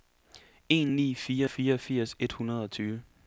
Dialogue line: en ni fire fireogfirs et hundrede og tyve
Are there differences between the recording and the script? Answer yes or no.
no